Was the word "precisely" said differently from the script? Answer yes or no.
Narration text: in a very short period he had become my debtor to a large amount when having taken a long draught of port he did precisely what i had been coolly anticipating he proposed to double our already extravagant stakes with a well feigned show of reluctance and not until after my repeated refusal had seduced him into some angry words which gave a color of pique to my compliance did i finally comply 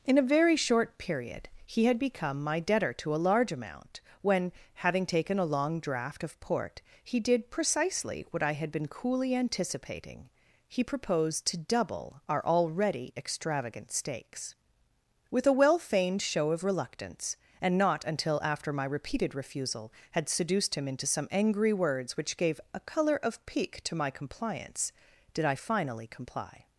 no